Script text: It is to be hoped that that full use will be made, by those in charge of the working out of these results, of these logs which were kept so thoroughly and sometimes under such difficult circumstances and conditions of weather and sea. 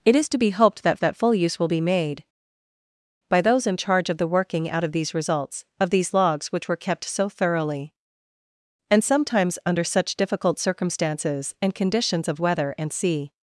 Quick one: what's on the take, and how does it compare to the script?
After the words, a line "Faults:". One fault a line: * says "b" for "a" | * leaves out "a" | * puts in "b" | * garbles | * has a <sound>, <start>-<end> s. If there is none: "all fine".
It is to be hoped that that full use will be made, by those in charge of the working out of these results, of these logs which were kept so thoroughly and sometimes under such difficult circumstances and conditions of weather and sea.
Faults:
all fine